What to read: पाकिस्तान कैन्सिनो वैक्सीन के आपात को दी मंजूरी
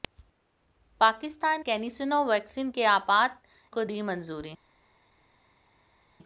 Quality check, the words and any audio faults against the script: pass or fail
pass